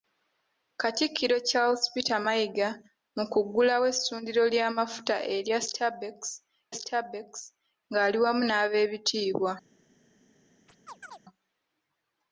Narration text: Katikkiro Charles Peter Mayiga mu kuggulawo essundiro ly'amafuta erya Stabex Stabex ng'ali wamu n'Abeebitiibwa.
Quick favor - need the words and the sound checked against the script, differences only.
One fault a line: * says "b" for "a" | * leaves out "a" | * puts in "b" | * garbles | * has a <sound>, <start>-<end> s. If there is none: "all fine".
* has a chirp, 10.7-11.2 s